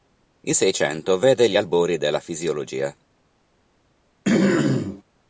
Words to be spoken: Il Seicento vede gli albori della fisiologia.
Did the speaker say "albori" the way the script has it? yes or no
yes